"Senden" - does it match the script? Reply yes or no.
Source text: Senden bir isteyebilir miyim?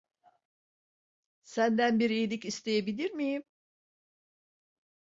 yes